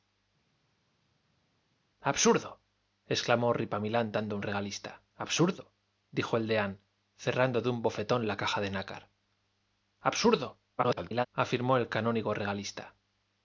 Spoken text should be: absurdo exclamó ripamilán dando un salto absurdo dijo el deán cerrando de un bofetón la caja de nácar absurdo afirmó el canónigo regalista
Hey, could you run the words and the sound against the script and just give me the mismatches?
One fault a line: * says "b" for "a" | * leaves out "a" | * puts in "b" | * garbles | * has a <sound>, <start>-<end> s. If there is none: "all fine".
* says "regalista" for "salto"
* garbles